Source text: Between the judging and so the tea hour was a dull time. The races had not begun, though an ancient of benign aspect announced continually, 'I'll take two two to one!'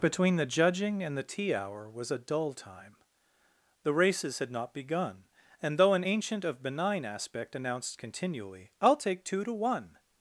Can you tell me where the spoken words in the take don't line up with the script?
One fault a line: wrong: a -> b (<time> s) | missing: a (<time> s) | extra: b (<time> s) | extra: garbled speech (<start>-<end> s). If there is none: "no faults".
missing: so (1.1 s)
extra: and (5.6 s)
missing: two (9.4 s)